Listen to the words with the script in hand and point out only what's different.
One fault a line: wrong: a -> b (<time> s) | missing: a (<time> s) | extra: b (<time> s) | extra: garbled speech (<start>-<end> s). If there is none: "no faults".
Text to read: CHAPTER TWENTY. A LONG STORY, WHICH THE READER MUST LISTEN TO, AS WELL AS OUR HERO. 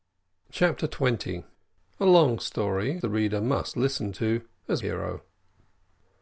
missing: WHICH (3.0 s)
missing: WELL AS OUR (4.8 s)